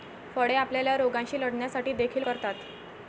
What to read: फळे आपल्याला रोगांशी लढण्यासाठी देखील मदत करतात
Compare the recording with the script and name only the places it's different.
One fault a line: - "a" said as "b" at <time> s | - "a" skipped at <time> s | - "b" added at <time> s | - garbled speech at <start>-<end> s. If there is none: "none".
- "मदत" skipped at 2.2 s